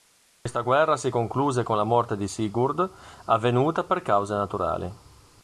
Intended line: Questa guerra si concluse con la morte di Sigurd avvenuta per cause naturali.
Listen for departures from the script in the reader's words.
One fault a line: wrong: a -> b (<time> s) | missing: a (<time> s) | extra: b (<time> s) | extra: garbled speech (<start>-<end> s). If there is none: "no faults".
no faults